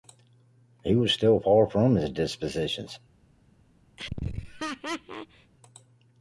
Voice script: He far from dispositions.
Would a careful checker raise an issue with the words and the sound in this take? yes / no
yes